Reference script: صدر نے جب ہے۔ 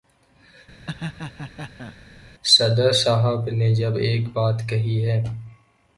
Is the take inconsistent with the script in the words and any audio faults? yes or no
yes